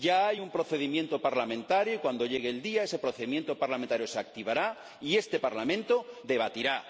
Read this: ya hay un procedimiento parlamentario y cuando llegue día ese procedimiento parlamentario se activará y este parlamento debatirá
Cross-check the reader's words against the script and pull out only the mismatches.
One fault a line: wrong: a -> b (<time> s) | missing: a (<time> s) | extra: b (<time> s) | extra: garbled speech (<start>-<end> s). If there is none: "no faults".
extra: el (2.5 s)